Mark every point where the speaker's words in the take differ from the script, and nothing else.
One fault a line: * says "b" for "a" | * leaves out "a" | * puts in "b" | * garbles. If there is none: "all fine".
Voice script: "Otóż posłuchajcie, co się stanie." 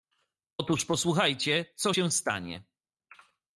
all fine